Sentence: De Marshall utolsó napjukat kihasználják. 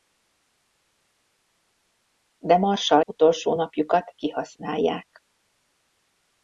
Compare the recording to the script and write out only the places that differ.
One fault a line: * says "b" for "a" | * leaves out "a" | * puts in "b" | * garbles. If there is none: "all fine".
all fine